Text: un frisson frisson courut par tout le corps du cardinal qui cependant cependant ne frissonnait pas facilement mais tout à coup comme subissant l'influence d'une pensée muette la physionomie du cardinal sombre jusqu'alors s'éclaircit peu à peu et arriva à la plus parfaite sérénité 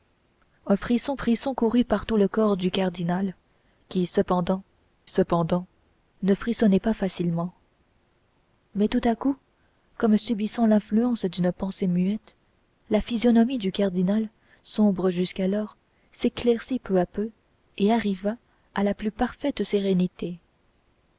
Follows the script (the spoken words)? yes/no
yes